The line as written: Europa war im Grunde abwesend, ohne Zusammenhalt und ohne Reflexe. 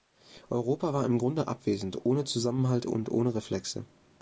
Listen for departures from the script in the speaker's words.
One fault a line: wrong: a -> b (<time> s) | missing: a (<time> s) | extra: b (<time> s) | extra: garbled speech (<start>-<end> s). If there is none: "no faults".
no faults